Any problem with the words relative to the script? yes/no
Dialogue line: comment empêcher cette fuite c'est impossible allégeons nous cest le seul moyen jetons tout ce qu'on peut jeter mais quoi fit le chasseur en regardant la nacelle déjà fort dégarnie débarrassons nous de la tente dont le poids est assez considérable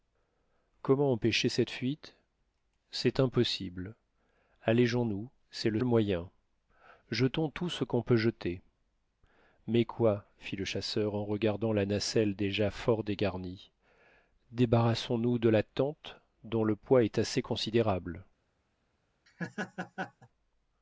yes